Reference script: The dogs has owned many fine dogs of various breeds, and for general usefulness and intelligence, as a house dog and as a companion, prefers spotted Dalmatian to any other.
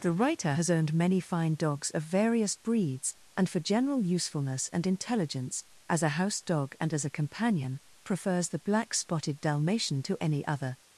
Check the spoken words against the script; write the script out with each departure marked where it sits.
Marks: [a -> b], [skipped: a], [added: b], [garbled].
The [dogs -> writer] has owned many fine dogs of various breeds, and for general usefulness and intelligence, as a house dog and as a companion, prefers [added: the black] spotted Dalmatian to any other.